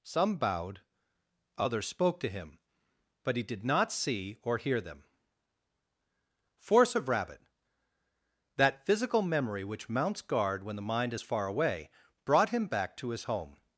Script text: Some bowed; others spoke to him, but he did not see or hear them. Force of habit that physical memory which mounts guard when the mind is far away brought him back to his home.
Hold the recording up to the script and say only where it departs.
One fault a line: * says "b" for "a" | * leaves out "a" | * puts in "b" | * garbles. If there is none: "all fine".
* says "rabbit" for "habit"